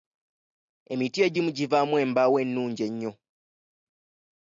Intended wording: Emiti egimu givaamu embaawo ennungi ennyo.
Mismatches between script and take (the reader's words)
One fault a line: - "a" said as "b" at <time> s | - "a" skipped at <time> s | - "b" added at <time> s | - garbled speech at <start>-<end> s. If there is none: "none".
none